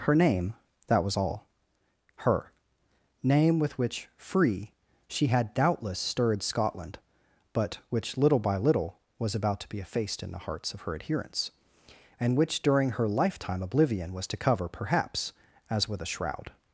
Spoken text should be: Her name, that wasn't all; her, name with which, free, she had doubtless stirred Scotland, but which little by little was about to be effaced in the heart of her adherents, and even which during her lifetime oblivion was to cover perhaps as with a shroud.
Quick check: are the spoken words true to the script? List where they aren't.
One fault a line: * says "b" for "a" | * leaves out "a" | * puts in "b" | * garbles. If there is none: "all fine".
* says "was" for "wasn't"
* says "hearts" for "heart"
* leaves out "even"